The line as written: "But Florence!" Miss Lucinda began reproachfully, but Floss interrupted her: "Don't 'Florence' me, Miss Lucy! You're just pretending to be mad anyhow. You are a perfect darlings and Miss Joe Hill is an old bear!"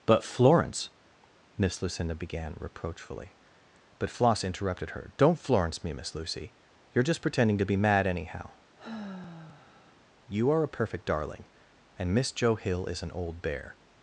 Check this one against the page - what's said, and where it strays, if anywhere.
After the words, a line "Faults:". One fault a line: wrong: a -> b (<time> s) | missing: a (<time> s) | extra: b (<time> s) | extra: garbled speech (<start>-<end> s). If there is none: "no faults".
"But Florence!" Miss Lucinda began reproachfully, but Floss interrupted her: "Don't 'Florence' me, Miss Lucy! You're just pretending to be mad anyhow. You are a perfect darling and Miss Joe Hill is an old bear!"
Faults:
wrong: darlings -> darling (11.1 s)